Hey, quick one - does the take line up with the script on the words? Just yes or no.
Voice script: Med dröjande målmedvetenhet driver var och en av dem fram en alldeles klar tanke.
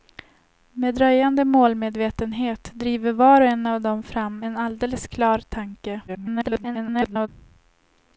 no